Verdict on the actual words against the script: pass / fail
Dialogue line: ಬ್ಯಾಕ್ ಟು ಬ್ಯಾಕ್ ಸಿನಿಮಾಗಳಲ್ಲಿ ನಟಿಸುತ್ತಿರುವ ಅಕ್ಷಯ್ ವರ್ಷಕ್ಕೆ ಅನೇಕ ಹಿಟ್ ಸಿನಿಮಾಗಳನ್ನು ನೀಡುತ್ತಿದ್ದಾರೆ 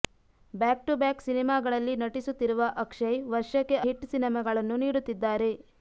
fail